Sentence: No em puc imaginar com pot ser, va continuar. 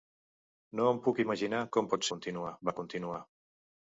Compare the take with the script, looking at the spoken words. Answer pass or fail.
fail